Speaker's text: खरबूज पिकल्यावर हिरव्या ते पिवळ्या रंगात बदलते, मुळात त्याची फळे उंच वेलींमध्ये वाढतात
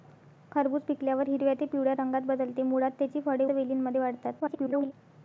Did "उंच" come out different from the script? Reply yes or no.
yes